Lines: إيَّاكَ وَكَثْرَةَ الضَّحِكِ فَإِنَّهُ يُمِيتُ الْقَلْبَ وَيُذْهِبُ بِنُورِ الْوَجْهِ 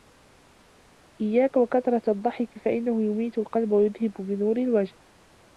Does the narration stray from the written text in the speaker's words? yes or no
no